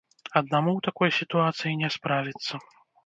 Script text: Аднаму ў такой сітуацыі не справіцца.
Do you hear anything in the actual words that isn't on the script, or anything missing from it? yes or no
no